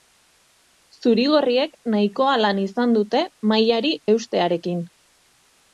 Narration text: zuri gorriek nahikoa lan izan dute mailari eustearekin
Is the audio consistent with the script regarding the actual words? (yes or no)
yes